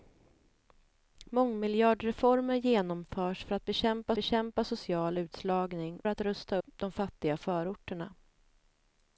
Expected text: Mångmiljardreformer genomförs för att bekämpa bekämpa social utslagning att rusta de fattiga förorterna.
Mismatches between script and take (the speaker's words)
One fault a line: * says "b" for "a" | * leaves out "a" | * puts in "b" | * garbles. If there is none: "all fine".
all fine